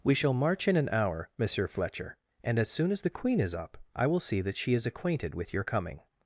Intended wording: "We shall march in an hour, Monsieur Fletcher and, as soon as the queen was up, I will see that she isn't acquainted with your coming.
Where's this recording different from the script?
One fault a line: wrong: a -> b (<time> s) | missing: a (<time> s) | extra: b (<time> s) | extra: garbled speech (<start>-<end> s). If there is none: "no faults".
wrong: was -> is (3.4 s)
wrong: isn't -> is (4.7 s)